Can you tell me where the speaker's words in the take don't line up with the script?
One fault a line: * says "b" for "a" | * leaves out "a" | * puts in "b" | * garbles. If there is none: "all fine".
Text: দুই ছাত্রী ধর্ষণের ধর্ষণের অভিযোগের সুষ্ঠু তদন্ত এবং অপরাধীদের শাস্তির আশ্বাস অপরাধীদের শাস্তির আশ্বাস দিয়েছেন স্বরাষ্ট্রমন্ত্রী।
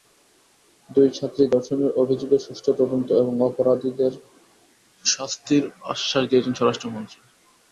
* leaves out "ধর্ষণের"
* leaves out "অপরাধীদের শাস্তির আশ্বাস"